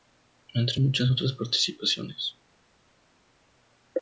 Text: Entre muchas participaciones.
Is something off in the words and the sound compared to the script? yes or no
yes